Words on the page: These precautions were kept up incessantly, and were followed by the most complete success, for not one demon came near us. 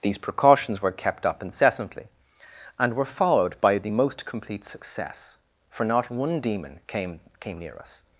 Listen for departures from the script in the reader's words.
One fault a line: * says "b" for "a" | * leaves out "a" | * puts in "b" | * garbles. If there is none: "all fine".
* puts in "came"